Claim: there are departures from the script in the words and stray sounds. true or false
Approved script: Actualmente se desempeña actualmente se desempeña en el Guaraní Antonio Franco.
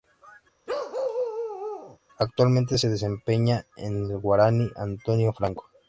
true